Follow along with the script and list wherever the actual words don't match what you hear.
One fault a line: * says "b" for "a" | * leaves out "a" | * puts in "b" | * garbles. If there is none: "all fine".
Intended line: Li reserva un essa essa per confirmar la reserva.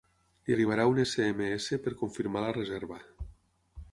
* says "arribarà" for "reserva"
* puts in "ema"